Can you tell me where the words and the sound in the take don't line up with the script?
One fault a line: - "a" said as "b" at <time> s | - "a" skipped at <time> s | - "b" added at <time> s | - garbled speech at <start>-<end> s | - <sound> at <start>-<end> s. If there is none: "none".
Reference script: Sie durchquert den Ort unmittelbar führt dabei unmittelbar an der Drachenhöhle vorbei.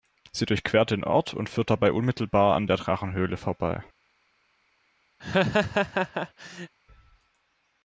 - "unmittelbar" said as "und" at 1.4 s
- laugh at 5.2-6.7 s